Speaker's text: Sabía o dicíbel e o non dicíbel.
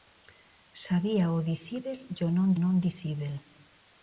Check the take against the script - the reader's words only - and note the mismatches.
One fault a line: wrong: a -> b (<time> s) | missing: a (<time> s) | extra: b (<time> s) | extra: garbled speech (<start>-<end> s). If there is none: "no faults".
extra: non (2.6 s)